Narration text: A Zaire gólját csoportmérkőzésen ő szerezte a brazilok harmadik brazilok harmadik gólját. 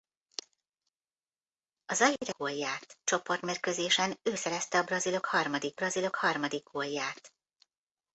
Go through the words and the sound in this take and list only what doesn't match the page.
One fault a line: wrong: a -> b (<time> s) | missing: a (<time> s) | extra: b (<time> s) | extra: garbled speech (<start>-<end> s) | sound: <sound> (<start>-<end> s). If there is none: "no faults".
no faults